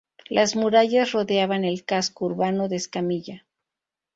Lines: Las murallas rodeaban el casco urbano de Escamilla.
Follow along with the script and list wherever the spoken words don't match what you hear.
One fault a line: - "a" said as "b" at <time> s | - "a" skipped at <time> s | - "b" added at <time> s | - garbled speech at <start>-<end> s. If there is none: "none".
none